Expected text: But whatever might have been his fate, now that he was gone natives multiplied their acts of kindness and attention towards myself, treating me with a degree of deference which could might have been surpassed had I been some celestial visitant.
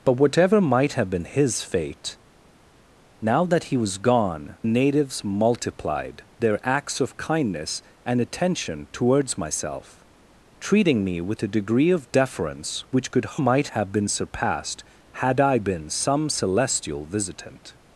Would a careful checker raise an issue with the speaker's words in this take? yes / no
no